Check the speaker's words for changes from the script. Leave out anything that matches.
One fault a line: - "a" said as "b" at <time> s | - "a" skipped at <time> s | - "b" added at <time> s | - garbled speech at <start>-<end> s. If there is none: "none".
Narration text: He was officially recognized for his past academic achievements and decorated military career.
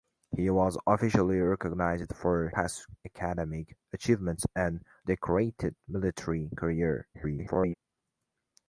- "his" skipped at 2.5 s
- garbled speech at 7.1-7.7 s